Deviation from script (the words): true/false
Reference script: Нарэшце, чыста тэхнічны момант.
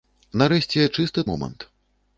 true